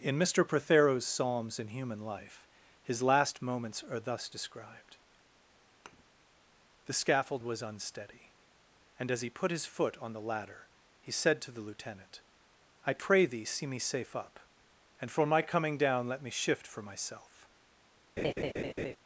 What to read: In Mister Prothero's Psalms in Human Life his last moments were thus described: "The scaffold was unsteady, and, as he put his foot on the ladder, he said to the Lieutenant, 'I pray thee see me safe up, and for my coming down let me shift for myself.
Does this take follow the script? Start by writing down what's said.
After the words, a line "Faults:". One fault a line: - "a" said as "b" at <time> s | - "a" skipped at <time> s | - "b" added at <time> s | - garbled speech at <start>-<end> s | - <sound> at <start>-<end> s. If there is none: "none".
In Mister Prothero's Psalms in Human Life his last moments are thus described: "The scaffold was unsteady, and, as he put his foot on the ladder, he said to the Lieutenant, 'I pray thee see me safe up, and for my coming down let me shift for myself.
Faults:
- "were" said as "are" at 3.8 s
- thud at 5.9-6.0 s
- laugh at 18.2-19.0 s